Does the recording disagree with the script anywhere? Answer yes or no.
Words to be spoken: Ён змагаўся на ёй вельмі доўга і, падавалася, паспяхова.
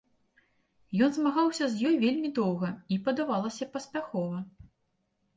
yes